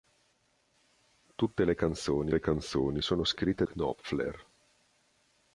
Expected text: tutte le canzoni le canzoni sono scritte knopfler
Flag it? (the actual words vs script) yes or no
no